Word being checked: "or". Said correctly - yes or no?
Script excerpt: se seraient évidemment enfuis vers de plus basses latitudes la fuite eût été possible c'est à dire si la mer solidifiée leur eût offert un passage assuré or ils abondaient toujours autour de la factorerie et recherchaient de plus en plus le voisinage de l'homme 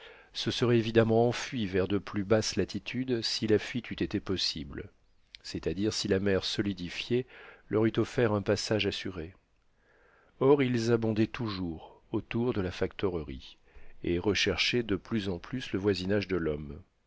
yes